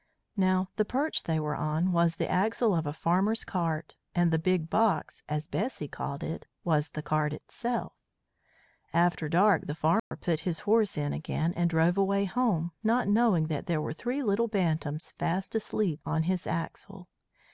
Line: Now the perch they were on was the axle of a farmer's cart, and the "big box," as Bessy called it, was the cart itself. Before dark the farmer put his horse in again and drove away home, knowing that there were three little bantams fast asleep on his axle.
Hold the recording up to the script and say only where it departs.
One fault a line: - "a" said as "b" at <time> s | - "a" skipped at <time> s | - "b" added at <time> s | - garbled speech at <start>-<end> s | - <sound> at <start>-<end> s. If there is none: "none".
- "Before" said as "After" at 8.9 s
- dropout at 10.0-10.1 s
- "not" added at 12.8 s